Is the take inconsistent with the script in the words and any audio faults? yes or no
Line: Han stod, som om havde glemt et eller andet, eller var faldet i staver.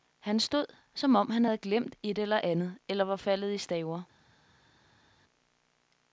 yes